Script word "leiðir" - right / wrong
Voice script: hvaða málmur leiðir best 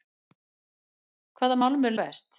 wrong